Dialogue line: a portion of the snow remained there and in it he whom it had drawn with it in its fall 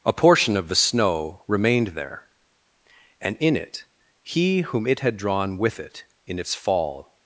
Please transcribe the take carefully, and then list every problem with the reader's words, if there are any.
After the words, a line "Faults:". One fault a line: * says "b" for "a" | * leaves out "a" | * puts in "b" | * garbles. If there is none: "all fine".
a portion of the snow remained there and in it he whom it had drawn with it in its fall
Faults:
all fine